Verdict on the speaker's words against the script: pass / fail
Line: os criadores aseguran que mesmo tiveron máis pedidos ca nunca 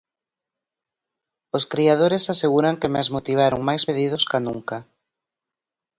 pass